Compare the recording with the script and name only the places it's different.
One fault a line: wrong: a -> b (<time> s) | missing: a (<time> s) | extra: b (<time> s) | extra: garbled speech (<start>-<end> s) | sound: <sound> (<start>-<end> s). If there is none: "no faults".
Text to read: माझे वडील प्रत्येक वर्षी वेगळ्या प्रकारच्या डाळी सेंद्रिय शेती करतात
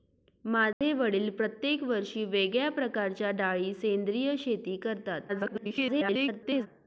sound: dropout (0.7-0.8 s)
extra: garbled speech (5.3-6.7 s)